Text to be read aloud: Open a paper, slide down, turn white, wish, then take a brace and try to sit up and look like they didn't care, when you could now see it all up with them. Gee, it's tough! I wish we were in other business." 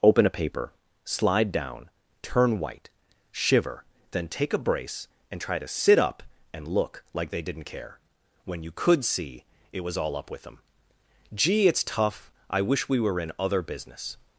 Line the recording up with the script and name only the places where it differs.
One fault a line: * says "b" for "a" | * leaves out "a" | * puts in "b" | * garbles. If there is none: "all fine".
* says "shiver" for "wish"
* leaves out "now"
* puts in "was"